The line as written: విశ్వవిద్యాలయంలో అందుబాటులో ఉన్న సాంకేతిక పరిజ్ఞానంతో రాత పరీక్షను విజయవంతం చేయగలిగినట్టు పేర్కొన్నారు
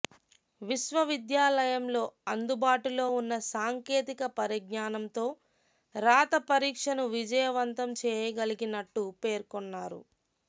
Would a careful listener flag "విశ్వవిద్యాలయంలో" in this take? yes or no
no